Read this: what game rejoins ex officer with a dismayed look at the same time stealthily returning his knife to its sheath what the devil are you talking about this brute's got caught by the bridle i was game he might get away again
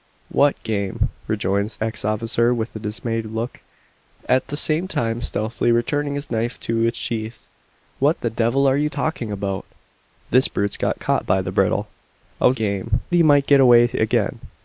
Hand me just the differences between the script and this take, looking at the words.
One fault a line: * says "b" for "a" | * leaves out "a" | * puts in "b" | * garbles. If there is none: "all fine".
all fine